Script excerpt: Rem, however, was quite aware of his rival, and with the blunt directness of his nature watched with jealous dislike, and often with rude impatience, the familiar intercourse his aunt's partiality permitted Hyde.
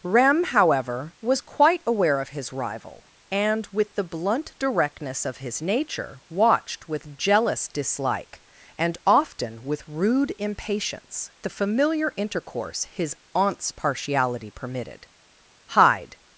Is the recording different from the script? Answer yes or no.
no